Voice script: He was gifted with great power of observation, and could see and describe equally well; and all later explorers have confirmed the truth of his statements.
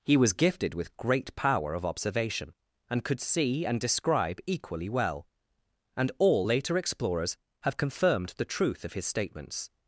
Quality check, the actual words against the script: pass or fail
pass